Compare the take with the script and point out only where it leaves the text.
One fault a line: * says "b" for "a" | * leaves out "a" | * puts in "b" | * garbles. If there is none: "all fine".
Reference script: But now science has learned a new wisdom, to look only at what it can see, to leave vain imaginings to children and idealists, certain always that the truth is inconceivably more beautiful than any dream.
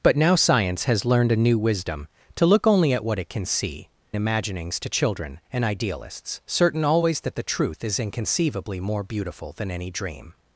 * leaves out "to leave vain"